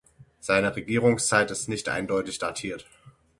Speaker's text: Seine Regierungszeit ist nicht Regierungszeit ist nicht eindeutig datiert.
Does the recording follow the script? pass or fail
fail